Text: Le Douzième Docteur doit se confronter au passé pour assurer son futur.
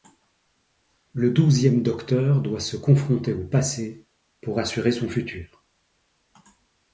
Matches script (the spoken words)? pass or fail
pass